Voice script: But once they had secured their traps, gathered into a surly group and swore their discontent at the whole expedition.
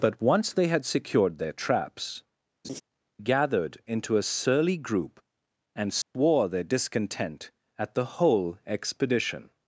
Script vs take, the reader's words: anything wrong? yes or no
no